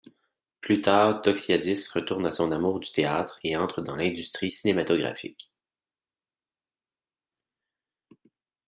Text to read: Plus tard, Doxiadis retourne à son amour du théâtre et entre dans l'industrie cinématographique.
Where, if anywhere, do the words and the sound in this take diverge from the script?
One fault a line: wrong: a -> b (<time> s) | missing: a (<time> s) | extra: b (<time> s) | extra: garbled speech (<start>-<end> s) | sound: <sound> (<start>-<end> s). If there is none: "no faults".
no faults